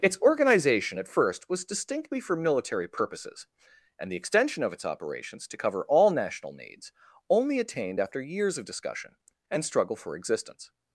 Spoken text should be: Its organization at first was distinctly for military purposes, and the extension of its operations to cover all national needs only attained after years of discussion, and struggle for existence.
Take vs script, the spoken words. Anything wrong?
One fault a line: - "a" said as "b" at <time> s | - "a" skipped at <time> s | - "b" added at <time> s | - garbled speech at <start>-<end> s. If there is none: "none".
none